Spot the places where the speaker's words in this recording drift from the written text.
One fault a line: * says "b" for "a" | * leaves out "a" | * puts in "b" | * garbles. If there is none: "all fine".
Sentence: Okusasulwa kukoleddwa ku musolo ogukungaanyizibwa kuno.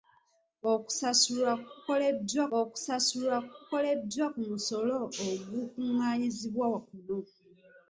* puts in "okusasulwa kukoleddwa"